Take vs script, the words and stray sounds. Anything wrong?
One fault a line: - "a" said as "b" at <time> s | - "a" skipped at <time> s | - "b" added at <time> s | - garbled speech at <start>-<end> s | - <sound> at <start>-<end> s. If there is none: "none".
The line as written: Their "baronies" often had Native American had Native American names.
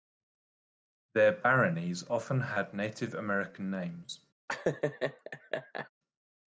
- "had Native American" skipped at 3.7 s
- laugh at 4.5-5.9 s